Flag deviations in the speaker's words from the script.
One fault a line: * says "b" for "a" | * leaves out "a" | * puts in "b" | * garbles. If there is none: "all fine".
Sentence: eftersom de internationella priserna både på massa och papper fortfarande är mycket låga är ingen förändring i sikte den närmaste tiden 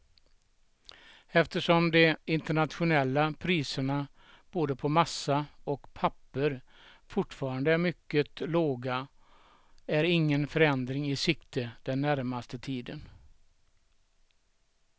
all fine